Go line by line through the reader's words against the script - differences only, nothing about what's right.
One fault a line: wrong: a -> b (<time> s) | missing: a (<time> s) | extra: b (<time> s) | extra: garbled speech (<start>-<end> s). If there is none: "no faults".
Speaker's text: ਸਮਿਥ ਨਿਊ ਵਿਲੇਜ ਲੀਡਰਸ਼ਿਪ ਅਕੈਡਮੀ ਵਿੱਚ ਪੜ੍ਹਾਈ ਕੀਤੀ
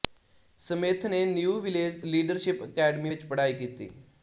extra: ਨੇ (1.1 s)